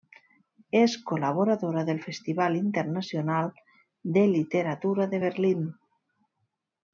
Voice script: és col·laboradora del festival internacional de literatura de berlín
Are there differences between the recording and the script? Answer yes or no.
no